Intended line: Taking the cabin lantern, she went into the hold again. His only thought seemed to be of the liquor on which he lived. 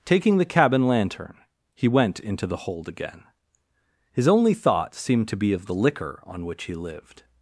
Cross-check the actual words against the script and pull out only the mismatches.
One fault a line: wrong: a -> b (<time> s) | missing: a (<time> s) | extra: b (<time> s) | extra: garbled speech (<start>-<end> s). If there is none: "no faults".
wrong: she -> he (1.7 s)